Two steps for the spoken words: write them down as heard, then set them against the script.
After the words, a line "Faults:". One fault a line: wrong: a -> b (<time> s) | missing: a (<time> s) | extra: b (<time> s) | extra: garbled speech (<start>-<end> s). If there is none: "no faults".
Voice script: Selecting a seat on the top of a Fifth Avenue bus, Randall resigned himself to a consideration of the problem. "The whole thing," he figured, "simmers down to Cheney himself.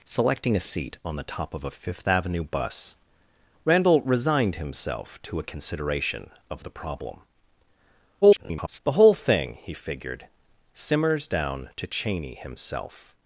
Selecting a seat on the top of a Fifth Avenue bus, Randall resigned himself to a consideration of the problem. [garbled] "The whole thing," he figured, "simmers down to Cheney himself.
Faults:
extra: garbled speech (8.2-8.8 s)